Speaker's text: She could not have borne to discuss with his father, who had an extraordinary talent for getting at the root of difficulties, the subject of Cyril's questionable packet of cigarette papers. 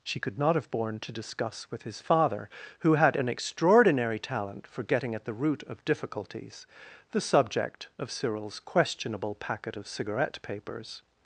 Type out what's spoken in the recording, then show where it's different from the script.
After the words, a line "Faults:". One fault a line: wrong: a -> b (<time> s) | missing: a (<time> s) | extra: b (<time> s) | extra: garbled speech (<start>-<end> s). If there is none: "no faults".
She could not have borne to discuss with his father, who had an extraordinary talent for getting at the root of difficulties, the subject of Cyril's questionable packet of cigarette papers.
Faults:
no faults